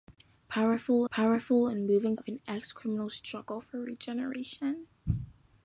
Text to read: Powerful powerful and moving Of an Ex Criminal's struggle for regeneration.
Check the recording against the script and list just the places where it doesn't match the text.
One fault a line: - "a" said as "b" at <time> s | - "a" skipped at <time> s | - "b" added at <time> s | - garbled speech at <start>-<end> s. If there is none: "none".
none